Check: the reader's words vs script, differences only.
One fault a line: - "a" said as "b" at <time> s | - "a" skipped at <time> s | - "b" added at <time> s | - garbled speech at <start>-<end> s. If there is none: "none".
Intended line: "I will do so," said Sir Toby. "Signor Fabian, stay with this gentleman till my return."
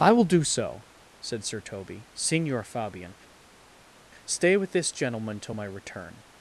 none